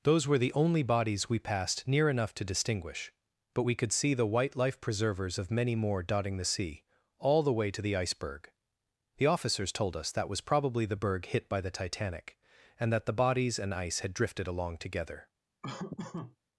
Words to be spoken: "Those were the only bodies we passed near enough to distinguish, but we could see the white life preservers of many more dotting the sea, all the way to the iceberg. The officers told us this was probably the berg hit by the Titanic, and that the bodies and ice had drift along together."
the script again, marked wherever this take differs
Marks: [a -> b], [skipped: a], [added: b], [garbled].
"Those were the only bodies we passed near enough to distinguish, but we could see the white life preservers of many more dotting the sea, all the way to the iceberg. The officers told us [this -> that] was probably the berg hit by the Titanic, and that the bodies and ice had [drift -> drifted] along together."